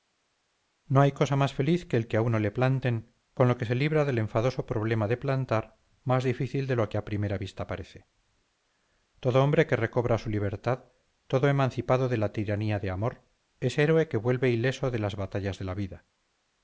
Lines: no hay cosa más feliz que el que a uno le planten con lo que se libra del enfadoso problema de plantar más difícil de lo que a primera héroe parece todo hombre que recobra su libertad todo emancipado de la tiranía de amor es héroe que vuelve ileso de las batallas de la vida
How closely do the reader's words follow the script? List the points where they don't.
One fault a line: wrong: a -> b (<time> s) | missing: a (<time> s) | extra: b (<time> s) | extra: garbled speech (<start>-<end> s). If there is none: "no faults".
wrong: héroe -> vista (7.4 s)